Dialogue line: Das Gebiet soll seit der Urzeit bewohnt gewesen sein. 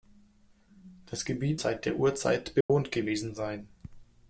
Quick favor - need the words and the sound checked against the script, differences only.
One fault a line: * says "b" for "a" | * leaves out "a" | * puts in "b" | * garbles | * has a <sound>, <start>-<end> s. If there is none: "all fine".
* leaves out "soll"
* has a dropout, 2.6-2.7 s